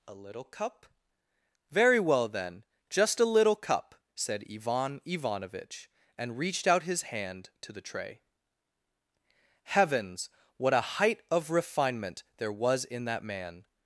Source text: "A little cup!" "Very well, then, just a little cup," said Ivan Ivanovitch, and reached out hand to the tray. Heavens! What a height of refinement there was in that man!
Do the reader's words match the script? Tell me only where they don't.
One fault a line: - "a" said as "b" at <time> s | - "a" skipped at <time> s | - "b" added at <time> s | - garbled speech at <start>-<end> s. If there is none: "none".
- "his" added at 6.8 s